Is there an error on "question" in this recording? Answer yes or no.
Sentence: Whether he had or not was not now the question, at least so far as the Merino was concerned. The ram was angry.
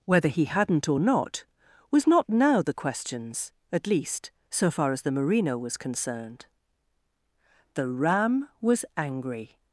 yes